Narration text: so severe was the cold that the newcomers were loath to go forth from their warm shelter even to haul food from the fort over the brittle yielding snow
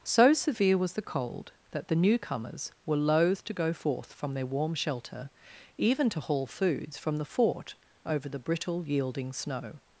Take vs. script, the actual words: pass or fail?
fail